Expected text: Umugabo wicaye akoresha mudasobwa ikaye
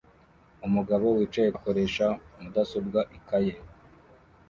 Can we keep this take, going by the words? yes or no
yes